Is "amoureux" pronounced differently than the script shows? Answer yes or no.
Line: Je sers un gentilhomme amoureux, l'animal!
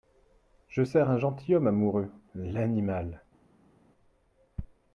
no